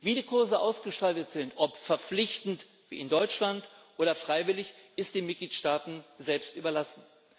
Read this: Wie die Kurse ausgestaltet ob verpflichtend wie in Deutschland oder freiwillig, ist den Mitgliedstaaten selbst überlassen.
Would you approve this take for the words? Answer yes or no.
no